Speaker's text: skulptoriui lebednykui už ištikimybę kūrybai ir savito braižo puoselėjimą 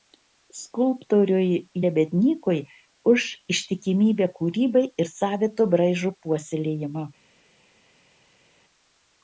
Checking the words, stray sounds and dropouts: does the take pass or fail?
pass